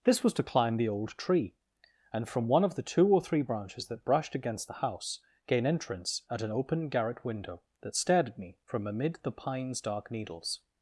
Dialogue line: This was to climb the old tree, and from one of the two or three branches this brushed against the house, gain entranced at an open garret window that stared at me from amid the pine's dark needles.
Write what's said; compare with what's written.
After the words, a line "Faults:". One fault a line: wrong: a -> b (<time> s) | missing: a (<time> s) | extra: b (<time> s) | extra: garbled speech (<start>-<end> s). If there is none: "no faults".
This was to climb the old tree, and from one of the two or three branches that brushed against the house, gain entrance at an open garret window that stared at me from amid the pine's dark needles.
Faults:
wrong: this -> that (3.9 s)
wrong: entranced -> entrance (5.7 s)